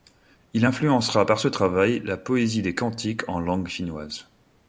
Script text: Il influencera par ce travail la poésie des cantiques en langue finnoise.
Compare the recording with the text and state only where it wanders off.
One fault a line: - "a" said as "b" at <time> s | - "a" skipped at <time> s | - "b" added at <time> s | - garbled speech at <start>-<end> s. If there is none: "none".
none